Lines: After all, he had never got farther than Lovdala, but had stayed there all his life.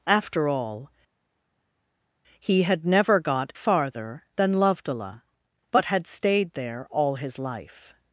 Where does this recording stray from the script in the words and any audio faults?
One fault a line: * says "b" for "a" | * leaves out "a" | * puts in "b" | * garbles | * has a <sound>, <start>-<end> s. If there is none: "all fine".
all fine